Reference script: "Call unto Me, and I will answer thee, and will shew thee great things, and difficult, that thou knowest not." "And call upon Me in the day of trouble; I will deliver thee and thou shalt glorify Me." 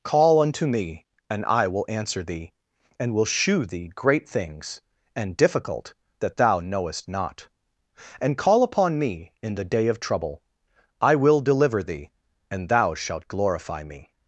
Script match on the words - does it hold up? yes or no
yes